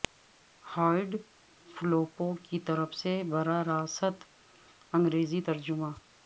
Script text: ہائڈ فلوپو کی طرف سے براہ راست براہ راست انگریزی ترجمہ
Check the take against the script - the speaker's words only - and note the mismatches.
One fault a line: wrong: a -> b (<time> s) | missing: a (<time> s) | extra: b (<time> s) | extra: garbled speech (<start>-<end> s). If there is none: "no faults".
missing: براہ راست (4.2 s)